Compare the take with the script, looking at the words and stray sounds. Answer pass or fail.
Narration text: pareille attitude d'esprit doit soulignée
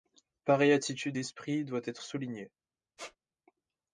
fail